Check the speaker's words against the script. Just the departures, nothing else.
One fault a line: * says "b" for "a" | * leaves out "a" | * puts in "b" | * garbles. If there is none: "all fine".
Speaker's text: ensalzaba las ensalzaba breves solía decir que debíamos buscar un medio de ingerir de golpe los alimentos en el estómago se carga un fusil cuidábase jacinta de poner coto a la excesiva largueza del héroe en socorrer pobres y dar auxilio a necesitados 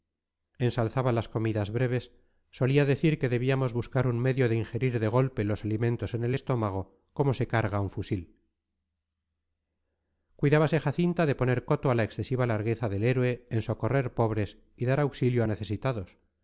* says "comidas" for "ensalzaba"
* puts in "como"